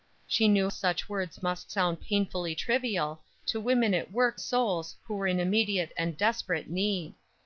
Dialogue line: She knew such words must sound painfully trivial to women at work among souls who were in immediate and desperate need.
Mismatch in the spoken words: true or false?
true